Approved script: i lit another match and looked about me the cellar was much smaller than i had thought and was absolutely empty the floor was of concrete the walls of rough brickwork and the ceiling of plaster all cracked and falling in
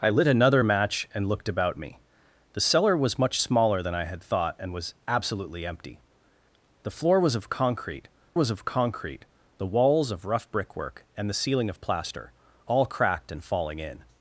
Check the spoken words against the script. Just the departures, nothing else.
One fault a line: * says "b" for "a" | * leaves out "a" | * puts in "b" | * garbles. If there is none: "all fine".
* puts in "was of concrete"